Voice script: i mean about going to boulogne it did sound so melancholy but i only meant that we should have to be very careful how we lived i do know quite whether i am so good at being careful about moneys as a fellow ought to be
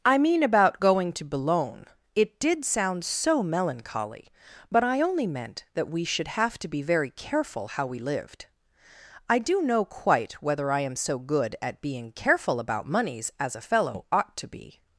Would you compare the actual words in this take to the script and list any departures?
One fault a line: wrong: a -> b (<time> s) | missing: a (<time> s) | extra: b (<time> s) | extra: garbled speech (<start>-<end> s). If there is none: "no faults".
no faults